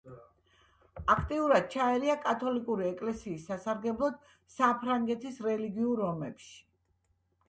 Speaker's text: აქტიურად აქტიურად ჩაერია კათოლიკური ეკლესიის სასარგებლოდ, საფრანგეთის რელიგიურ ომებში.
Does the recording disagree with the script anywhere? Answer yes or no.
yes